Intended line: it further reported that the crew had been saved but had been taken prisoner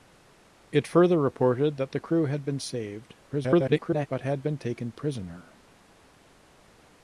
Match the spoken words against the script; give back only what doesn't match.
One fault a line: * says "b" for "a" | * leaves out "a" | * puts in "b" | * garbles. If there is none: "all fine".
* garbles